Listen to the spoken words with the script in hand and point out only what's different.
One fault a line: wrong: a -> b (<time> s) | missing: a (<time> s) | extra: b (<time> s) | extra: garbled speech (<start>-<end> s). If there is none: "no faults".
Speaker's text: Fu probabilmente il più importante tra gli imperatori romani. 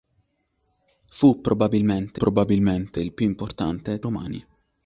extra: probabilmente (2.2 s)
missing: tra gli imperatori (4.0 s)